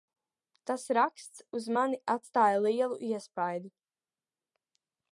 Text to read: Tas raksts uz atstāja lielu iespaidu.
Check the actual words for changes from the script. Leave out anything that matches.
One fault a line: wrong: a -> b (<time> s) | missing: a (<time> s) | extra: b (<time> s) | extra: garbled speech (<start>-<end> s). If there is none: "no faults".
extra: mani (1.8 s)